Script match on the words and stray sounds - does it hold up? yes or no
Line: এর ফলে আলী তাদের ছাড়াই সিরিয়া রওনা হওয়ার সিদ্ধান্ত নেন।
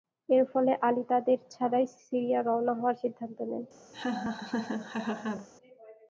no